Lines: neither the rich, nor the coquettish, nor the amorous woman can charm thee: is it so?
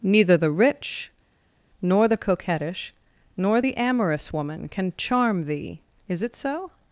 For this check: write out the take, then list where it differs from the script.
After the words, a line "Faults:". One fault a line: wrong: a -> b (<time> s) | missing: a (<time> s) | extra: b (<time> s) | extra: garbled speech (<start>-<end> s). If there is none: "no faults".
neither the rich, nor the coquettish, nor the amorous woman can charm thee: is it so?
Faults:
no faults